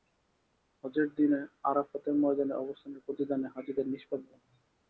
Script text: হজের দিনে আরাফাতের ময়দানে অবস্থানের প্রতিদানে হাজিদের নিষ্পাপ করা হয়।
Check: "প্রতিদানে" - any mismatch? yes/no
no